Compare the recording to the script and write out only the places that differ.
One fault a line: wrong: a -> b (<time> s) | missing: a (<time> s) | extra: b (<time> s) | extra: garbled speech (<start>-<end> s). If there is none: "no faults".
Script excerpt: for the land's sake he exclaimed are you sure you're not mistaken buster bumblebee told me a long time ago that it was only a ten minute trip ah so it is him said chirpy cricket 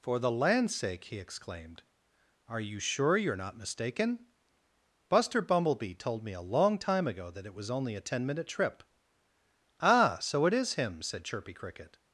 no faults